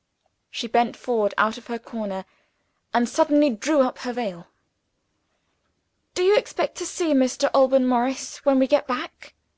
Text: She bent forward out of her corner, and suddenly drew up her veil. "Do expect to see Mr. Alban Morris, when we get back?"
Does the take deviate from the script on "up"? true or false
false